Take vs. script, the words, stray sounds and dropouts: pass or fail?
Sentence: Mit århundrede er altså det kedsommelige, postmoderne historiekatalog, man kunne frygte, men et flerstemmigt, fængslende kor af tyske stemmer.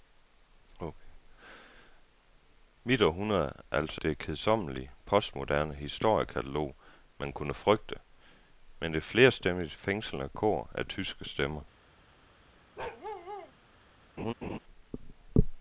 fail